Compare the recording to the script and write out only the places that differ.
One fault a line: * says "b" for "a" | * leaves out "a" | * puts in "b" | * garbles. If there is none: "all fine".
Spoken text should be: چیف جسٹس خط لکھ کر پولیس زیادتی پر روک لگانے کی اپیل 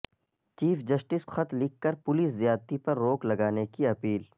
all fine